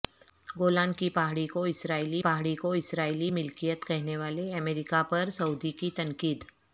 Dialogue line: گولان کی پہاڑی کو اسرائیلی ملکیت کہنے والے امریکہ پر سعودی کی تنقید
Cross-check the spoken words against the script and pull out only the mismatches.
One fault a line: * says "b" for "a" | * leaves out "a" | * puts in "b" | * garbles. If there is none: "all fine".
* puts in "پہاڑی کو اسرائیلی"